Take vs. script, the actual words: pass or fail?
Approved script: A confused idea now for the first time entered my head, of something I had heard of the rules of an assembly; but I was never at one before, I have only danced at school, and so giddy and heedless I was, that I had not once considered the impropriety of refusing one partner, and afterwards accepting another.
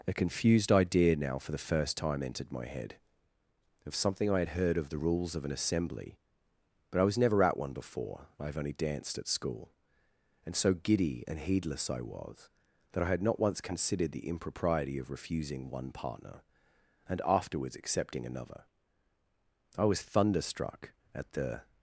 fail